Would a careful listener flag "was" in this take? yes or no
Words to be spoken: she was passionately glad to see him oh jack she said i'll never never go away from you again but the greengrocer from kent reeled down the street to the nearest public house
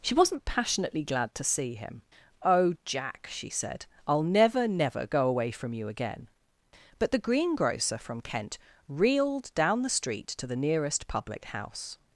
yes